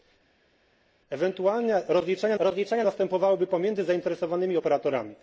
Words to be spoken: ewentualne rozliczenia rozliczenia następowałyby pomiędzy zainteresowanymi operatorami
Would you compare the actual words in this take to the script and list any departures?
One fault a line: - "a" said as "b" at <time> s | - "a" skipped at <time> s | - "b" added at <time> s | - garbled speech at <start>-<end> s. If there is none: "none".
none